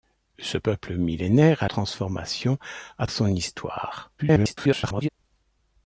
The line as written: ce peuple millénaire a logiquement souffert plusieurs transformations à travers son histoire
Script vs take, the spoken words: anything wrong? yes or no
yes